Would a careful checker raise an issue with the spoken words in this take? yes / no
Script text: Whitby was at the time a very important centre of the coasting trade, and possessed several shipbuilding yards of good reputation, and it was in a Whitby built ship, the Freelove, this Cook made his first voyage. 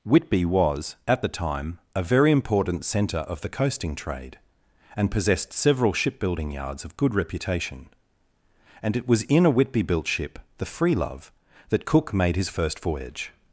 yes